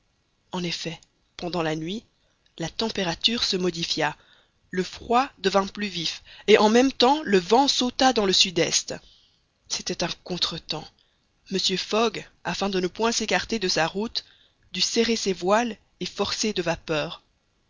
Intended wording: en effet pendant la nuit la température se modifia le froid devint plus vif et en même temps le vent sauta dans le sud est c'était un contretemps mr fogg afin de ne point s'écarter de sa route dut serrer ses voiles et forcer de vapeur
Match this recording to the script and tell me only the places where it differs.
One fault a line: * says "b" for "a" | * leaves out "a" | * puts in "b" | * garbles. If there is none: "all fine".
all fine